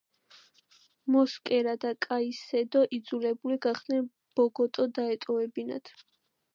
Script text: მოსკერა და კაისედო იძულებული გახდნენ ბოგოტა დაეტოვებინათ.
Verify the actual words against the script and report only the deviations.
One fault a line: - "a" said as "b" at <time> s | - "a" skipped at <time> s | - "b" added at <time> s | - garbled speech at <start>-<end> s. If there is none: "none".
none